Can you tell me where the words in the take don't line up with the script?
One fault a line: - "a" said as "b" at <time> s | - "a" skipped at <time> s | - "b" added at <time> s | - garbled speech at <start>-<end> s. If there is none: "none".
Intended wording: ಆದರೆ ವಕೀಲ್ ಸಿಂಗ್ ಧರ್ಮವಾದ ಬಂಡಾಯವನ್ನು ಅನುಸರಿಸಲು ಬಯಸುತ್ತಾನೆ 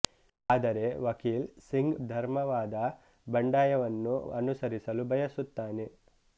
none